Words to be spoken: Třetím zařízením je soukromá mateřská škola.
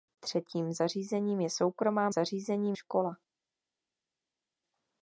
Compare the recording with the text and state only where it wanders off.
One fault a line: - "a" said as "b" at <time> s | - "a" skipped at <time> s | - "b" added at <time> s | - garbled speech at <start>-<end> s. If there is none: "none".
- "mateřská" said as "zařízením" at 2.1 s